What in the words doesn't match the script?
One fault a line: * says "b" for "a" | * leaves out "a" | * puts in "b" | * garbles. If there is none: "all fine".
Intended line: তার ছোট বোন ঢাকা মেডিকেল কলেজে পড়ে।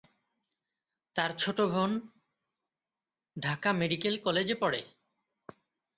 all fine